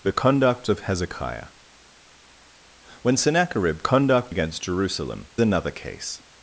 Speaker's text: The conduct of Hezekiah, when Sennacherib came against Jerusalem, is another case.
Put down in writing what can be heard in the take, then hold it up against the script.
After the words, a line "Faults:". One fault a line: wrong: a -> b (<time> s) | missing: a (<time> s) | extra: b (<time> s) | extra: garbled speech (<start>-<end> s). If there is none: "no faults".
The conduct of Hezekiah, when Sennacherib conduct against Jerusalem, another case.
Faults:
wrong: came -> conduct (3.8 s)
missing: is (5.3 s)